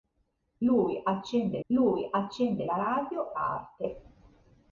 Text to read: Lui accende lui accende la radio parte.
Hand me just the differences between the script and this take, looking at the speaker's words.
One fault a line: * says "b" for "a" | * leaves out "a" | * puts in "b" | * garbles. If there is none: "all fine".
all fine